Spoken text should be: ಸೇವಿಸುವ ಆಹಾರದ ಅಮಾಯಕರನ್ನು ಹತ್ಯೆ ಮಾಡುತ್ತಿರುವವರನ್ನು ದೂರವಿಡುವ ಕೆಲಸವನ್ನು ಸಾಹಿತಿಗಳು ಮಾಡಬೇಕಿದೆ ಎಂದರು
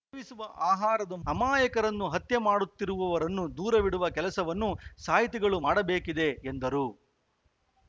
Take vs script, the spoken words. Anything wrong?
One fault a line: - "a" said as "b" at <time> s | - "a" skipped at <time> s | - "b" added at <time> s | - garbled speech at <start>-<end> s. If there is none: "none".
none